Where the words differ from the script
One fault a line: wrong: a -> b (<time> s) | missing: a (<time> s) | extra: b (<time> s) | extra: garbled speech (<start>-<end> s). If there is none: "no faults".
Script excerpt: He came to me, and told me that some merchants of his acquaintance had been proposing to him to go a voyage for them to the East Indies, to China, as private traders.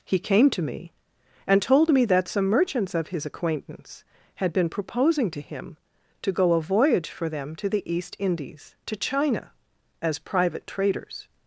no faults